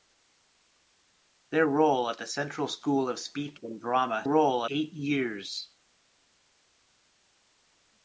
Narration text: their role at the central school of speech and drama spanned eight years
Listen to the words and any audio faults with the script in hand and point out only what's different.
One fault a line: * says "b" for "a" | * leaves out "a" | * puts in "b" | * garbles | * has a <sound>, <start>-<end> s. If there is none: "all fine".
* says "role" for "spanned"